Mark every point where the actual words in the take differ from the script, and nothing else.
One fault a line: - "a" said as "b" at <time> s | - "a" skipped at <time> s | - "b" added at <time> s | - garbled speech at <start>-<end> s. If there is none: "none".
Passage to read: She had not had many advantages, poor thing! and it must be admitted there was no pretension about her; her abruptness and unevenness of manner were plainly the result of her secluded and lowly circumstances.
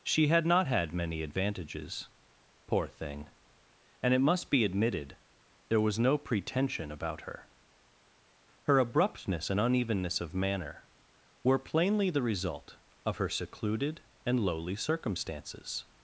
none